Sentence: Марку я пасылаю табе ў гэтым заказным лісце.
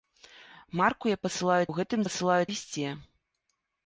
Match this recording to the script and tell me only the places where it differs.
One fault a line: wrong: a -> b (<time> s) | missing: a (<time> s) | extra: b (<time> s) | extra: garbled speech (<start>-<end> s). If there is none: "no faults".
missing: табе (1.6 s)
wrong: заказным -> пасылаю (2.0 s)